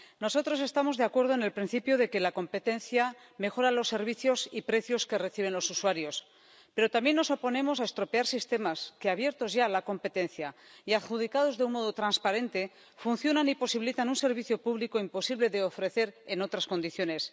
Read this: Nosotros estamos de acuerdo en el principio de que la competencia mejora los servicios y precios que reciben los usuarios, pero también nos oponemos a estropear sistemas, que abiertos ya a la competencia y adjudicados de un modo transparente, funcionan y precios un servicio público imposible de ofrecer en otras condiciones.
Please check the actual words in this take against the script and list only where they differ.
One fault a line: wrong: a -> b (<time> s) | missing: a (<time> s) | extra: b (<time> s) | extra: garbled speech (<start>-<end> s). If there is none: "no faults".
wrong: precios -> posibilitan (13.6 s)